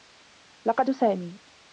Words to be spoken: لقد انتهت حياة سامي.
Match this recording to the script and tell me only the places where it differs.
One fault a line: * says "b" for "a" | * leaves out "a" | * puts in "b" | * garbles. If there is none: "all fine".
* leaves out "انتهت حياة"